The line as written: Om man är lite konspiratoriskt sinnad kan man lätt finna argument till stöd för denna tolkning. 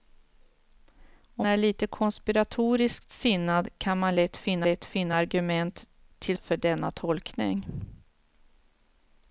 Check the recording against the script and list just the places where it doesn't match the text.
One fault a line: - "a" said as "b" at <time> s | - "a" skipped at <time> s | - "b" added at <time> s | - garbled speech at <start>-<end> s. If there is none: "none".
- "man" skipped at 1.5 s
- "lätt finna" added at 4.6 s
- "stöd" skipped at 6.4 s